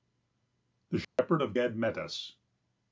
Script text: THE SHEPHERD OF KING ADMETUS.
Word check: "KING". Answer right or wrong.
wrong